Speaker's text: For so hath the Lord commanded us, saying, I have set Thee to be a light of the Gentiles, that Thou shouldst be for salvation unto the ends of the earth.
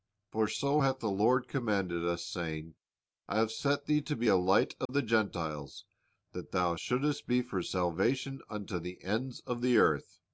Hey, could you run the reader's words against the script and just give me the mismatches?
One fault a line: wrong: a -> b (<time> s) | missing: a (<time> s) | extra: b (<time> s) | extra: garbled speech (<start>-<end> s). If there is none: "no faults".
no faults